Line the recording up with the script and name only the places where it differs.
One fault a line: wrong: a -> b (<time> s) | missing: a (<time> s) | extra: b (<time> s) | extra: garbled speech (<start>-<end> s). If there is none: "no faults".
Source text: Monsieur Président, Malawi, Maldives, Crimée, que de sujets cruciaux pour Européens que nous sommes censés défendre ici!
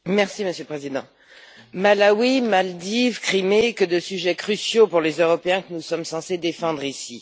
extra: le (0.5 s)
extra: les (5.0 s)